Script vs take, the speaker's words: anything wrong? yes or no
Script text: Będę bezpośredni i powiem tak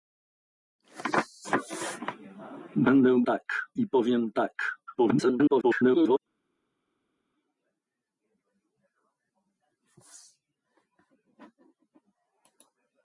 yes